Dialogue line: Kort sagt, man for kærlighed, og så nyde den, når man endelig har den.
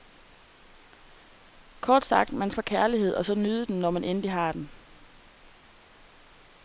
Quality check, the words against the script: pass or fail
pass